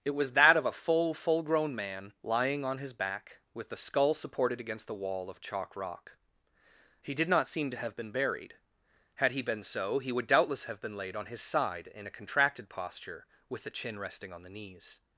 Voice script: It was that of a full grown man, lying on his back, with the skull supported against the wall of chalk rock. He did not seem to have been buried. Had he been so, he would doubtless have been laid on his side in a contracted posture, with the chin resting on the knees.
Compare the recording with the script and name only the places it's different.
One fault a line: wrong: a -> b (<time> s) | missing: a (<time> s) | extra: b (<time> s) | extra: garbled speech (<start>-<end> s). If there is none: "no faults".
extra: full (1.1 s)